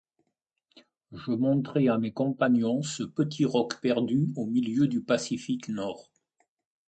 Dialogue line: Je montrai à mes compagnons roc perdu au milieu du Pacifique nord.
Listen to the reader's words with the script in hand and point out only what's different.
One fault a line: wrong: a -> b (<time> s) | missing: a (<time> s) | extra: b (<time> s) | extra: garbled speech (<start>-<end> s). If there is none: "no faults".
extra: ce petit (2.8 s)